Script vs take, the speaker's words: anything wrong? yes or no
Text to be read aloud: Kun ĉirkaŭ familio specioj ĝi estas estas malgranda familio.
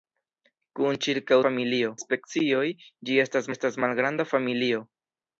no